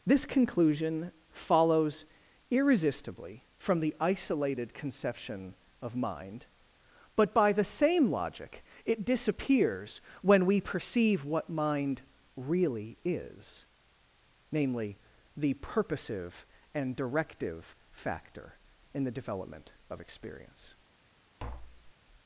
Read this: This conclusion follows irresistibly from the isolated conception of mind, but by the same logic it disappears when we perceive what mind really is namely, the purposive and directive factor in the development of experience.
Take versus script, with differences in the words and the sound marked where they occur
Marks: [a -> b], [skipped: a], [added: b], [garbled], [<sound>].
This conclusion follows irresistibly from the isolated conception of mind, but by the same logic it disappears when we perceive what mind really is namely, the purposive and directive factor in the development of experience. [tap]